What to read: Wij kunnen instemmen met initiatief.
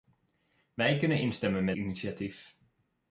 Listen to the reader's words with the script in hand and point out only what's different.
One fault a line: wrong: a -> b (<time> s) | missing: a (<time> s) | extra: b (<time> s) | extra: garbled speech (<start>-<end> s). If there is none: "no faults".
no faults